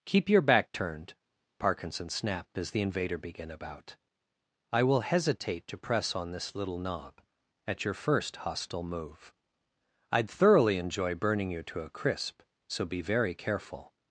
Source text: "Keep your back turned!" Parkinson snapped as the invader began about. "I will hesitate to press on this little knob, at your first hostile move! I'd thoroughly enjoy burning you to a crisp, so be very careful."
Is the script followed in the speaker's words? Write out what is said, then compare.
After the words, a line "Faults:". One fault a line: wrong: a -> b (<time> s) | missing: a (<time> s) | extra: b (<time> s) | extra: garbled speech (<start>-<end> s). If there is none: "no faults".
"Keep your back turned!" Parkinson snapped as the invader began about. "I will hesitate to press on this little knob, at your first hostile move! I'd thoroughly enjoy burning you to a crisp, so be very careful."
Faults:
no faults